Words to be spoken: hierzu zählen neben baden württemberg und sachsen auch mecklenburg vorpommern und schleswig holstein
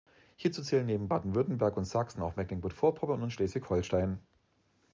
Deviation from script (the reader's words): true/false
false